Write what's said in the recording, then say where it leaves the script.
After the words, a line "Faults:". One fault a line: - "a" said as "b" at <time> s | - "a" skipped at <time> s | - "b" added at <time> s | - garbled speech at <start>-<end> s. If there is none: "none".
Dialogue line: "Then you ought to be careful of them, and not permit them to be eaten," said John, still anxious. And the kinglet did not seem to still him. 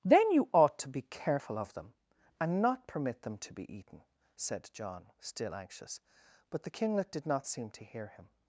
"Then you ought to be careful of them, and not permit them to be eaten," said John, still anxious. But the kinglet did not seem to hear him.
Faults:
- "And" said as "But" at 6.5 s
- "still" said as "hear" at 7.8 s